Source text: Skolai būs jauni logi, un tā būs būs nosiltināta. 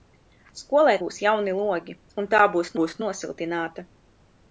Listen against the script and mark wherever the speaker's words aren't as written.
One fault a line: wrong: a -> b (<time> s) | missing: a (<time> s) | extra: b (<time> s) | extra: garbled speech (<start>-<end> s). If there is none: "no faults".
no faults